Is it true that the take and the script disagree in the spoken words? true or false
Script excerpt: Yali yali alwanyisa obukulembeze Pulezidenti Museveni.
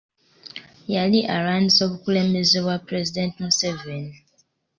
true